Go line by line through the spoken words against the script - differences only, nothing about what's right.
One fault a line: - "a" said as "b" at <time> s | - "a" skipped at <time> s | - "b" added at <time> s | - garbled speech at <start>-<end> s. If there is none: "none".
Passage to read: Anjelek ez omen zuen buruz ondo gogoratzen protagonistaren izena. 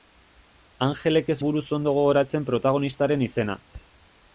- "omen zuen" skipped at 1.4 s